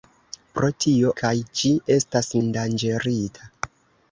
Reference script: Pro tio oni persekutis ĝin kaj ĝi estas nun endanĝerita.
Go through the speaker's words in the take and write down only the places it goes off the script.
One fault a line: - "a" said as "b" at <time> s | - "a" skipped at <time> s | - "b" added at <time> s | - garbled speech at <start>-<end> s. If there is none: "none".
- "oni persekutis ĝin" skipped at 1.1 s
- "nun" skipped at 2.3 s